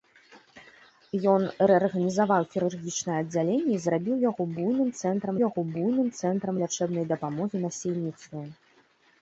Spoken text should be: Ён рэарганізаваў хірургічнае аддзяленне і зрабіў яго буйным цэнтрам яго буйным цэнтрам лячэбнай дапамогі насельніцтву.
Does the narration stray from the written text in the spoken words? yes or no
no